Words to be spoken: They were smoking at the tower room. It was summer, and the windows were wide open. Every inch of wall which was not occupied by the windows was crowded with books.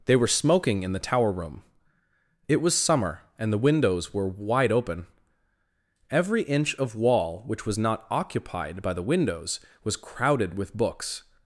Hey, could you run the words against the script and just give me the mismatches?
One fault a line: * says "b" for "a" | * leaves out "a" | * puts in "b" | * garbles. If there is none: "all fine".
* says "in" for "at"